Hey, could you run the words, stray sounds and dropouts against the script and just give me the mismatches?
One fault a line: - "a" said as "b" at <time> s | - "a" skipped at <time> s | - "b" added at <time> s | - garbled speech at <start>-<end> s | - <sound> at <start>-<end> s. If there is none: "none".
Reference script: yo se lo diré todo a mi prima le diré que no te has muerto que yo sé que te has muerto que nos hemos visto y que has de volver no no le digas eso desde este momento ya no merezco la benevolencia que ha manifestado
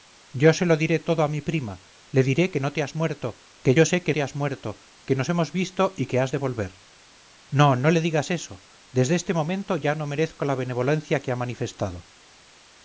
none